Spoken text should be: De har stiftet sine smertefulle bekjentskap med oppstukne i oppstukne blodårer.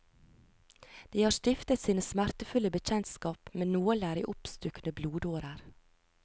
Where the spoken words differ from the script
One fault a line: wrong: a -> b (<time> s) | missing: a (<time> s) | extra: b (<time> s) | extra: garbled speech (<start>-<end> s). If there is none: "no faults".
wrong: oppstukne -> nåler (3.8 s)